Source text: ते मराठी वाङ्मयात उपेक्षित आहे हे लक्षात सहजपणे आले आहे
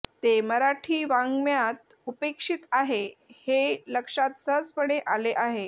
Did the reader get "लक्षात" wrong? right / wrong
right